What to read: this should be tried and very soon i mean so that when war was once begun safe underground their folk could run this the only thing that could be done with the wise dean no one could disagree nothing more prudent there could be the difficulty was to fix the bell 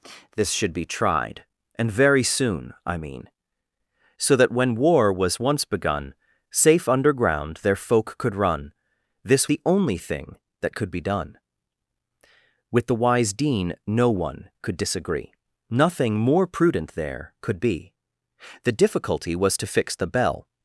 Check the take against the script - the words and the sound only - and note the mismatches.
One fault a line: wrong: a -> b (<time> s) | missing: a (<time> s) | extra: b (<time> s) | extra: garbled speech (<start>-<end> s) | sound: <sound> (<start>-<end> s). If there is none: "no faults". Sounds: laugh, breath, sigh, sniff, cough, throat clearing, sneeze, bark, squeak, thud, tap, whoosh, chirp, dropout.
no faults